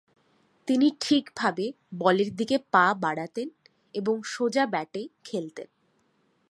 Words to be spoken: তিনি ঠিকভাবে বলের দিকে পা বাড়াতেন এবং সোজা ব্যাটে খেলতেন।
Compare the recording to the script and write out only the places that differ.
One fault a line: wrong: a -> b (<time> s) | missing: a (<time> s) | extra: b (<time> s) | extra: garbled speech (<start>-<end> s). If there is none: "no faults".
no faults